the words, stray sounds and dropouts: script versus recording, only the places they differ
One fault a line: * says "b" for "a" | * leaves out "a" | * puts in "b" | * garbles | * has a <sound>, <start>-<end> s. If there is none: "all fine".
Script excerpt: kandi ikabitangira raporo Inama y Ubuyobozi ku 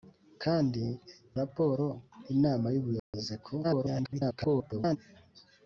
* leaves out "ikabitangira"
* has a dropout, 3.0-3.1 s
* garbles